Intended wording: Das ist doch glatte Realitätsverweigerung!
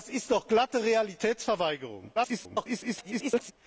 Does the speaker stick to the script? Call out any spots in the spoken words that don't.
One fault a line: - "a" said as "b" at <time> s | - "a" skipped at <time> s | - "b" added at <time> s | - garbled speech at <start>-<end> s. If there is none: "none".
- garbled speech at 2.2-3.5 s